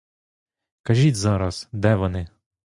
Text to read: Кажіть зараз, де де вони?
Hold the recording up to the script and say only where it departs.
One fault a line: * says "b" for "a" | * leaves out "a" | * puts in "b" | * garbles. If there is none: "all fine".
* leaves out "де"